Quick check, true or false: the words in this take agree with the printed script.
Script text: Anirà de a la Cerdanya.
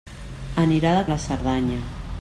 true